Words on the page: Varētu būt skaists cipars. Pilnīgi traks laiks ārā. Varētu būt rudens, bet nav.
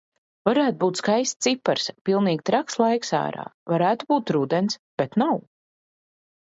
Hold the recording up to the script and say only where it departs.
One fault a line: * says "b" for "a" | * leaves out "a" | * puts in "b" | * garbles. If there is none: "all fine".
all fine